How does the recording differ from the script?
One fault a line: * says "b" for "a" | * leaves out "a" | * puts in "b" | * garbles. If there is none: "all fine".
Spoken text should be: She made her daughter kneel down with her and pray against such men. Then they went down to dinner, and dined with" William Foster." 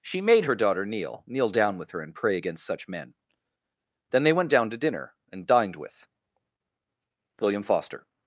* puts in "kneel"